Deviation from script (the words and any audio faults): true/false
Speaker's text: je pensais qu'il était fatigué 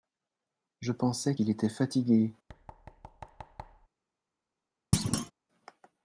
true